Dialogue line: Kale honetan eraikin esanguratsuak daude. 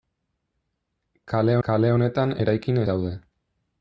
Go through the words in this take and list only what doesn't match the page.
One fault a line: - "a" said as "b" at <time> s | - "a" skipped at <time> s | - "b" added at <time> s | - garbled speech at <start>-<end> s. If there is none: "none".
- "kale" added at 1.7 s
- "esanguratsuak" skipped at 2.8 s